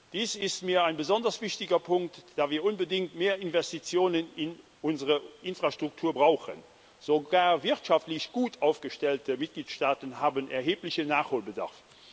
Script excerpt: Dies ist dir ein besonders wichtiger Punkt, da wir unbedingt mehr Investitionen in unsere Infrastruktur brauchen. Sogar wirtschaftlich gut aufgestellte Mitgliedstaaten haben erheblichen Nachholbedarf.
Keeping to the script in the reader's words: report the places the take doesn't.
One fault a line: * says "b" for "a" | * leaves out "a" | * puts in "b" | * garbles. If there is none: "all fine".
* says "mir" for "dir"